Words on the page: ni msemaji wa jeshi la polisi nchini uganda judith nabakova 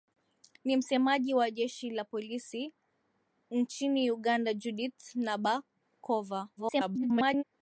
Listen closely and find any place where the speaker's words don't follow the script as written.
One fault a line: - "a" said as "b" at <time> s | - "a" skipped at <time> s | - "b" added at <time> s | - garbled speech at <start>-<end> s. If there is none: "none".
- garbled speech at 6.6-7.4 s